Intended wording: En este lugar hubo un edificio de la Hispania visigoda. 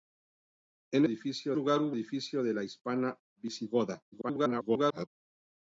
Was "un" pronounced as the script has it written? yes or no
no